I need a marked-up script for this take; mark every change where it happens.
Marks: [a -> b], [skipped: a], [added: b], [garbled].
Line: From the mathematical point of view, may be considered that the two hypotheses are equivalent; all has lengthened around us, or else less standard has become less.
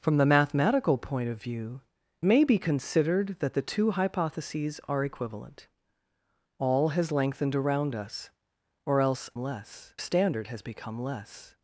From the mathematical point of view, may be considered that the two hypotheses are equivalent; all has lengthened around us, or else less standard has become less.